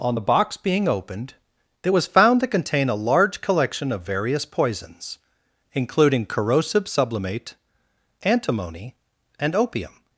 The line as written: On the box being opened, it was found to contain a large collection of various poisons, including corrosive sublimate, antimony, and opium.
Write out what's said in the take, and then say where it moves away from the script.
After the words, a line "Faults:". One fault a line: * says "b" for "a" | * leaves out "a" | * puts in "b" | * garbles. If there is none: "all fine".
On the box being opened, it was found to contain a large collection of various poisons, including corrosive sublimate, antimony, and opium.
Faults:
all fine